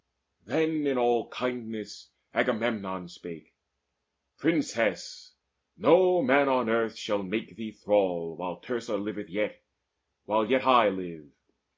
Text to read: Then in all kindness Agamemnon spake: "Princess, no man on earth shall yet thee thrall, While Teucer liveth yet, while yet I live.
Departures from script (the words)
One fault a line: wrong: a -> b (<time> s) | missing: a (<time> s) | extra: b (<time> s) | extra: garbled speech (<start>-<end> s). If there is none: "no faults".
wrong: yet -> make (7.2 s)